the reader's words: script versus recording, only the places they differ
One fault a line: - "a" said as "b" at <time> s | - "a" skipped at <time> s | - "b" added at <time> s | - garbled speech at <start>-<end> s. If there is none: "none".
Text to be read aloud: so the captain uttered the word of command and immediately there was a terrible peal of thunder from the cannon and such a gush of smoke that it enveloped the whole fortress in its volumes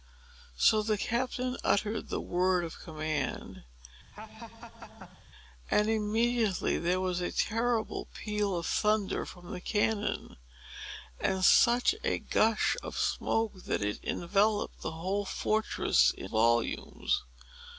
- "its" skipped at 16.3 s